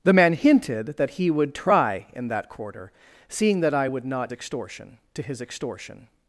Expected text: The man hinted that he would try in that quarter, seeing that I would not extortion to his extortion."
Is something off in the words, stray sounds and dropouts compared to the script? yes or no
no